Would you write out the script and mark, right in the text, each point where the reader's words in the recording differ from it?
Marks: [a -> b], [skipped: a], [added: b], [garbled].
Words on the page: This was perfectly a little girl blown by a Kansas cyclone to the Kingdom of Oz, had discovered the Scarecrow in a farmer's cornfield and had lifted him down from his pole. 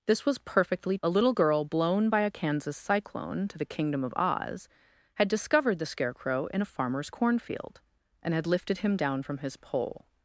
This was perfectly a little girl blown by a Kansas cyclone to the Kingdom of Oz, had discovered the Scarecrow in a farmer's cornfield and had lifted him down from his pole.